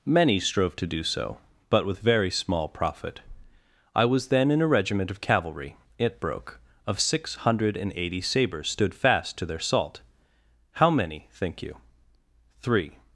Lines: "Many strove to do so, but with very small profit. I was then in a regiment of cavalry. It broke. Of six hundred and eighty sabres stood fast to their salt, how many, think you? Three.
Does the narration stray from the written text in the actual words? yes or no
no